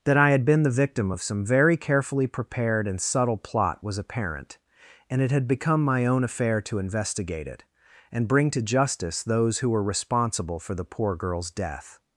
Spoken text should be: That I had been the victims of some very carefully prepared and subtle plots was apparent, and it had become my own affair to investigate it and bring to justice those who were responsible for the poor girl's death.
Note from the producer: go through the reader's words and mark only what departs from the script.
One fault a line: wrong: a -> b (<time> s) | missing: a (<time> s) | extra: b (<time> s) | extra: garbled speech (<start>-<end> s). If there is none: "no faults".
wrong: victims -> victim (0.7 s)
wrong: plots -> plot (3.4 s)